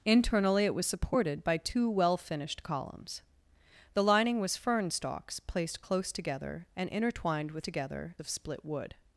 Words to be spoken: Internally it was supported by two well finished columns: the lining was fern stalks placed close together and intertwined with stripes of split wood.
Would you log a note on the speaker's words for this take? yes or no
yes